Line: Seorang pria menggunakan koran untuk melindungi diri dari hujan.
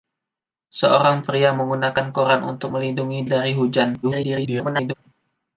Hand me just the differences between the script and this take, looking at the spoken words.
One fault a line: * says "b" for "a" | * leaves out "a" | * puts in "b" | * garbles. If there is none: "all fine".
* leaves out "diri"
* garbles